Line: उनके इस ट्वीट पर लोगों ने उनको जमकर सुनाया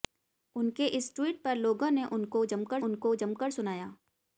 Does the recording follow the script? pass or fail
fail